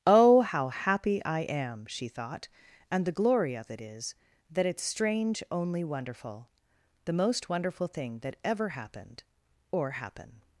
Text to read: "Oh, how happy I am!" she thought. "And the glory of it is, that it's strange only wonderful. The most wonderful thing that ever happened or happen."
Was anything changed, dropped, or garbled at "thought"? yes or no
no